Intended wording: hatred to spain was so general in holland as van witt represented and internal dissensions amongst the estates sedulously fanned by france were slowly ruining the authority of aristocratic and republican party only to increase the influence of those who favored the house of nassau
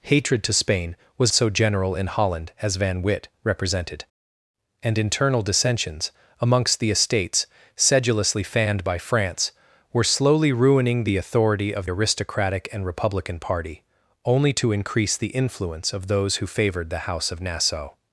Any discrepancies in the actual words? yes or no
no